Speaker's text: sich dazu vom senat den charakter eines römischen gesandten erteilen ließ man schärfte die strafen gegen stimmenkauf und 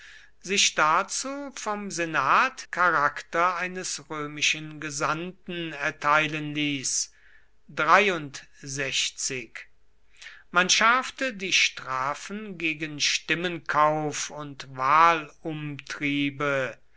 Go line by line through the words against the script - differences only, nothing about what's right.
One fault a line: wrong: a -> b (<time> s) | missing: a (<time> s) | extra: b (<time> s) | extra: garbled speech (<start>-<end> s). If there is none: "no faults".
missing: den (2.6 s)